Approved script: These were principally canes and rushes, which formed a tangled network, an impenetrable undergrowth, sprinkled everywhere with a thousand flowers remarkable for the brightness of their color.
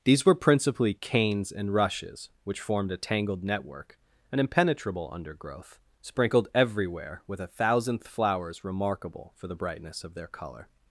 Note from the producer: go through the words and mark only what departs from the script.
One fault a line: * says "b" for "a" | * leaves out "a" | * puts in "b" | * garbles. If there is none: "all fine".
* says "thousandth" for "thousand"